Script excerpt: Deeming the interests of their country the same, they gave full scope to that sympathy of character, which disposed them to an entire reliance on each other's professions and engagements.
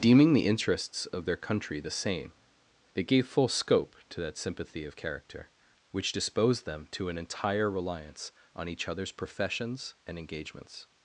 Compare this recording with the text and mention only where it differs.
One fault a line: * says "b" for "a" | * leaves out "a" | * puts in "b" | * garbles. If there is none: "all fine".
all fine